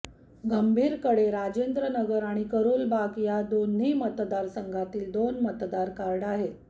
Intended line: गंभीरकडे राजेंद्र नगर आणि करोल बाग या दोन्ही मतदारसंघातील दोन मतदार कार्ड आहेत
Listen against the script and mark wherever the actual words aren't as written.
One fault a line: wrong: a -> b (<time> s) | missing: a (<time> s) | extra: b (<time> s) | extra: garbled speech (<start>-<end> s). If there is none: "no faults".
no faults